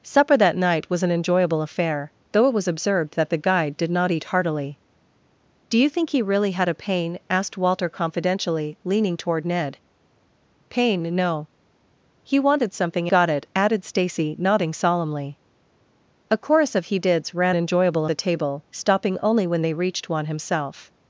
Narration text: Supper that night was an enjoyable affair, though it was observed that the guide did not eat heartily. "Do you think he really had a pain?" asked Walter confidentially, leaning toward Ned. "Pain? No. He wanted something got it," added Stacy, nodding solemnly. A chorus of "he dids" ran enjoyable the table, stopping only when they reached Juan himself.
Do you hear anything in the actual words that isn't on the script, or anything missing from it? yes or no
no